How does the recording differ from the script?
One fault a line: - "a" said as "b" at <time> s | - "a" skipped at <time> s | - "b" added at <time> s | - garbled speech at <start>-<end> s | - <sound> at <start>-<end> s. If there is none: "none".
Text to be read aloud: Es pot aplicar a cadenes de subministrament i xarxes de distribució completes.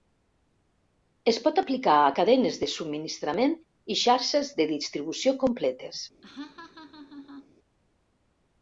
- laugh at 6.2-7.5 s